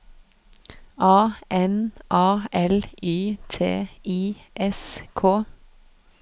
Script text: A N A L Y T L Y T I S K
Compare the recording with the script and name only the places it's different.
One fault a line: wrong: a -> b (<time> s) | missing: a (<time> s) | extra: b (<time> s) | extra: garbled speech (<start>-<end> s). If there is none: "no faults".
missing: L Y T (3.9 s)